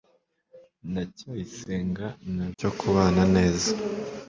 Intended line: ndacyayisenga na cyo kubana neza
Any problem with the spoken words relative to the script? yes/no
no